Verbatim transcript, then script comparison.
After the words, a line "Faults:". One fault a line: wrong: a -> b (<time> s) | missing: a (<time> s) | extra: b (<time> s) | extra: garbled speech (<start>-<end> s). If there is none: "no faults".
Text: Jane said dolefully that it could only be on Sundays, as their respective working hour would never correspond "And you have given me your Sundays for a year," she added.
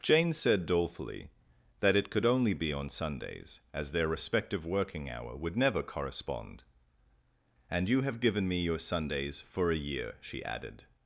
Jane said dolefully that it could only be on Sundays, as their respective working hour would never correspond "And you have given me your Sundays for a year," she added.
Faults:
no faults